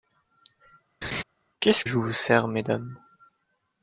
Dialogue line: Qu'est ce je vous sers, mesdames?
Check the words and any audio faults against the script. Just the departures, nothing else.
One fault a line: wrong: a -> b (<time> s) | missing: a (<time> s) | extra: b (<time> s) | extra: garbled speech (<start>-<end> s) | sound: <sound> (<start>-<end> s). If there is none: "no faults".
sound: laugh (1.0-1.2 s)